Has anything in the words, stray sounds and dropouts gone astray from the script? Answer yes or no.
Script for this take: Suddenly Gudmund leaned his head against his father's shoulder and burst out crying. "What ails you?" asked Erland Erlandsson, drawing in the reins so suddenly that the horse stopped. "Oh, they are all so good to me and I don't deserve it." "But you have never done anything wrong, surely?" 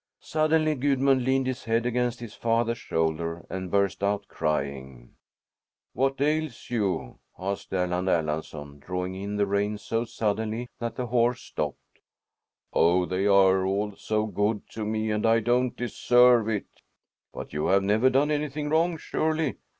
no